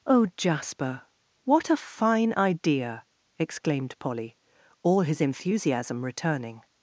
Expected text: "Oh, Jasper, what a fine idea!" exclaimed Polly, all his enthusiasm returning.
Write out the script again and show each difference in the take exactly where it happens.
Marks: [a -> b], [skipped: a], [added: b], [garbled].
"Oh, Jasper, what a fine idea!" exclaimed Polly, all his enthusiasm returning.